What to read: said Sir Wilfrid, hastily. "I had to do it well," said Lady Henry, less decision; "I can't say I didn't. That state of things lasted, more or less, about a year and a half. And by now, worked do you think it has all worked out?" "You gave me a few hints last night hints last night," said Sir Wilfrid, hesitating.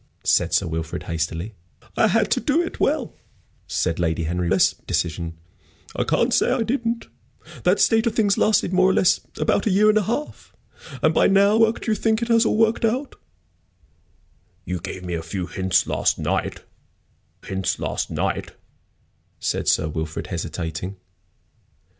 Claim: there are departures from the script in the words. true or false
false